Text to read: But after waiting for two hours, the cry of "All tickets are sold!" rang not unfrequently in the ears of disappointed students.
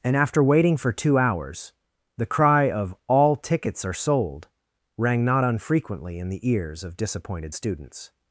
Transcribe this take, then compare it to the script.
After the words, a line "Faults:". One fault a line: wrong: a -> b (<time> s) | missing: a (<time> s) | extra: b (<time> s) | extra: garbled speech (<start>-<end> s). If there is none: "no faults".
And after waiting for two hours, the cry of "All tickets are sold!" rang not unfrequently in the ears of disappointed students.
Faults:
wrong: But -> And (0.0 s)